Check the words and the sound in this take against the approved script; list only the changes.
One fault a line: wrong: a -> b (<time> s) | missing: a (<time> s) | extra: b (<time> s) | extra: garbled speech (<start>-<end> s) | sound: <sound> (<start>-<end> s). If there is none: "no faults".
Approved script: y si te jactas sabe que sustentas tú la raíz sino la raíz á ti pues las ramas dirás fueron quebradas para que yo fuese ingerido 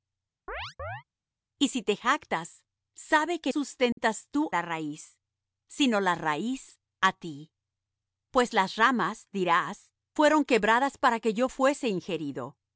sound: chirp (0.5-1.0 s)
sound: dropout (3.9-4.0 s)